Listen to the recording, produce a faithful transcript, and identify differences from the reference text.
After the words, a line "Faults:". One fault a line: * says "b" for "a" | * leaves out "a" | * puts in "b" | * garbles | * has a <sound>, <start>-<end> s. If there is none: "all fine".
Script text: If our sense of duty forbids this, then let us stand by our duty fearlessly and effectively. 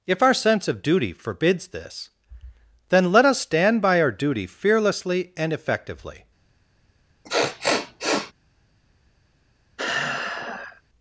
If our sense of duty forbids this, then let us stand by our duty fearlessly and effectively.
Faults:
* has a sniff, 7.2-8.3 s
* has a sigh, 9.8-10.8 s